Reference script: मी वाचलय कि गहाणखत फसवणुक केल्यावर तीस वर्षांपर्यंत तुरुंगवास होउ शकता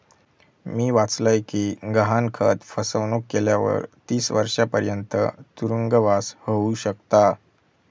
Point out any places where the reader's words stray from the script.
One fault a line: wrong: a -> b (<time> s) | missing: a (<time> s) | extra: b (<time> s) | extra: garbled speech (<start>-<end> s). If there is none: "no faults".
no faults